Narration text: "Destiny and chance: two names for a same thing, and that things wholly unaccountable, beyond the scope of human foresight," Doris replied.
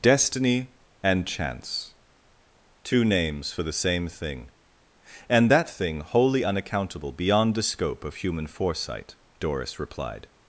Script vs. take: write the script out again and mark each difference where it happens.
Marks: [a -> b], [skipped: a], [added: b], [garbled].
"Destiny and chance: two names for [a -> the] same thing, and that [things -> thing] wholly unaccountable, beyond the scope of human foresight," Doris replied.